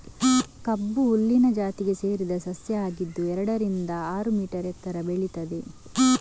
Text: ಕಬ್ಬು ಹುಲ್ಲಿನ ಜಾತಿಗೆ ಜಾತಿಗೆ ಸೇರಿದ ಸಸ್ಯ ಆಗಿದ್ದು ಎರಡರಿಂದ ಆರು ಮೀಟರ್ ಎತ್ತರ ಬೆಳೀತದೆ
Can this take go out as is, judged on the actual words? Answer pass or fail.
fail